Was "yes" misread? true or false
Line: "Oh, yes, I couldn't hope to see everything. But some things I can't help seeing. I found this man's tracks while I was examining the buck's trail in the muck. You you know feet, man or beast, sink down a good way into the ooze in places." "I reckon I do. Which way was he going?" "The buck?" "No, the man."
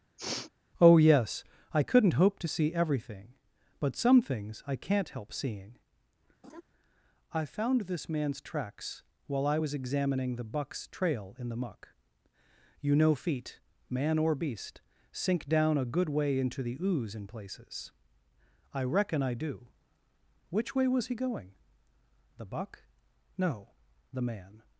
false